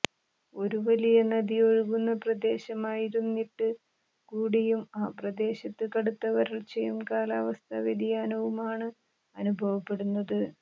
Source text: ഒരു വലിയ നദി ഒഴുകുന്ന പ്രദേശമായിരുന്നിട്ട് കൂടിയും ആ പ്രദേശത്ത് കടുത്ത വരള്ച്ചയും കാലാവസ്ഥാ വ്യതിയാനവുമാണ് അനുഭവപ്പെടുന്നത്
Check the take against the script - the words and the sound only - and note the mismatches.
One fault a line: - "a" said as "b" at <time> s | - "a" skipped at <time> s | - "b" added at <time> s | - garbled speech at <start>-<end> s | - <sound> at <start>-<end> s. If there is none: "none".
none